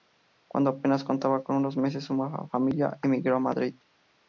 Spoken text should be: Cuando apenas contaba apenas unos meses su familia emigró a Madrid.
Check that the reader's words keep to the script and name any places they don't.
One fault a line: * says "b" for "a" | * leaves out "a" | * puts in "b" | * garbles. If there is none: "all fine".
* says "con" for "apenas"